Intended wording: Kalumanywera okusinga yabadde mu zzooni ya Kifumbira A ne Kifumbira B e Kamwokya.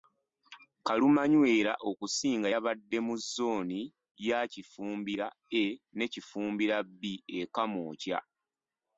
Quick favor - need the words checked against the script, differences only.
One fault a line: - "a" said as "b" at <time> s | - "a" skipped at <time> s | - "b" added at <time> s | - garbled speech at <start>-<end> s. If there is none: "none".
none